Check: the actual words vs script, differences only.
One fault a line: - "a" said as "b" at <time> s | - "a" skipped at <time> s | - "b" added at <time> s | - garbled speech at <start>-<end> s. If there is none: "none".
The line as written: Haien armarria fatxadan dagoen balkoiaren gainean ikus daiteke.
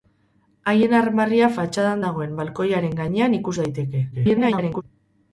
- garbled speech at 4.1-4.8 s